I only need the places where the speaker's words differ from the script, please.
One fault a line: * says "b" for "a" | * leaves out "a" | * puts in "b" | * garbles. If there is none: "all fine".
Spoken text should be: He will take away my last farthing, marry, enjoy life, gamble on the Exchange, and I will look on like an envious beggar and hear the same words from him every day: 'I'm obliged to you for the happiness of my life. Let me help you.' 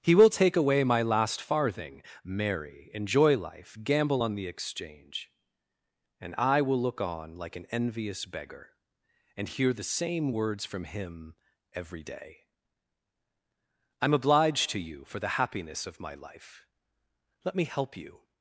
all fine